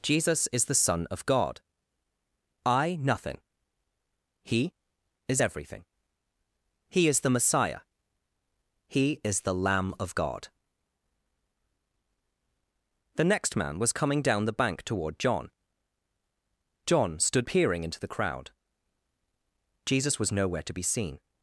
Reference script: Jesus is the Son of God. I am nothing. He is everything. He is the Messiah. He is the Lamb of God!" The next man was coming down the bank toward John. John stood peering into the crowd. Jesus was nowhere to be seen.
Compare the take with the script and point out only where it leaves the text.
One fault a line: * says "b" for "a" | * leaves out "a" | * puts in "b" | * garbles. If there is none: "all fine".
* leaves out "am"